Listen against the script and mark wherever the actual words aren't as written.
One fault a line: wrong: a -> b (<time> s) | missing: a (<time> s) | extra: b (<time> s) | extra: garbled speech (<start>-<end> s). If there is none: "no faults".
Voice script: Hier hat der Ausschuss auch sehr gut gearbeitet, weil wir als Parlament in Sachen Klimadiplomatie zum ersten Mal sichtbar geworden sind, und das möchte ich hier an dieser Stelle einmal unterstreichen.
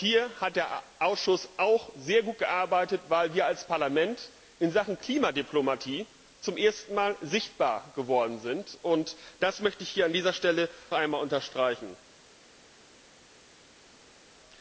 no faults